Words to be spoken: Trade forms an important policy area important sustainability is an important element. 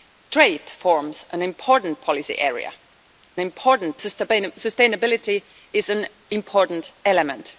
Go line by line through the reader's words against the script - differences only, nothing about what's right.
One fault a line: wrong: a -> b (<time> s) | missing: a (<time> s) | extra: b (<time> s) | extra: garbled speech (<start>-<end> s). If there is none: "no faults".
no faults